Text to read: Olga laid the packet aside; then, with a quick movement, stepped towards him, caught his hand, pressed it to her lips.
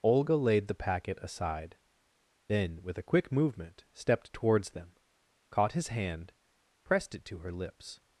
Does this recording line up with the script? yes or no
no